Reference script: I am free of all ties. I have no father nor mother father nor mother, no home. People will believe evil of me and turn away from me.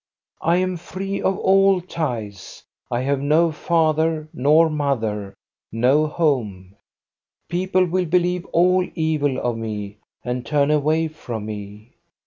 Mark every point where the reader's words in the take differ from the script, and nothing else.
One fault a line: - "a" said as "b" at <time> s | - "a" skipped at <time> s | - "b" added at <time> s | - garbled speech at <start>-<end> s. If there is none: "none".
- "father nor mother" skipped at 5.4 s
- "all" added at 8.5 s